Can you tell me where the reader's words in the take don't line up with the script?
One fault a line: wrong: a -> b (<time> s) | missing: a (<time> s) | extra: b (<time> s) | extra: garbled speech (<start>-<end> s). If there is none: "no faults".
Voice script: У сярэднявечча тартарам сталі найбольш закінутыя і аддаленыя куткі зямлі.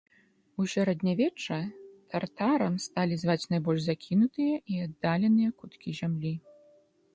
extra: зваць (3.2 s)